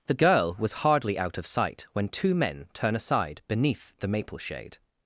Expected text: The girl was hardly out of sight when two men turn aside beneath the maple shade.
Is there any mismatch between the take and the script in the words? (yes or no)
no